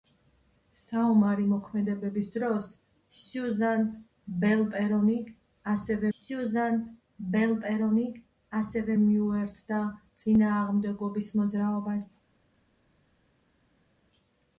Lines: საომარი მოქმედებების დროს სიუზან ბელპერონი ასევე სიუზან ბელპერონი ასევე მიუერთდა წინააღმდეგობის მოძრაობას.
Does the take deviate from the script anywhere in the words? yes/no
no